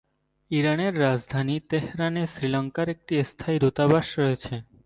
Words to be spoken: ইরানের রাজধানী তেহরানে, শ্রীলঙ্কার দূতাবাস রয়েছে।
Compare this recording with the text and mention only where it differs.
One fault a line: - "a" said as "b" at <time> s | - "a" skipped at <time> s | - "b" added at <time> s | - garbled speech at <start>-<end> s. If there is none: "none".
- "একটি স্থায়ী" added at 2.9 s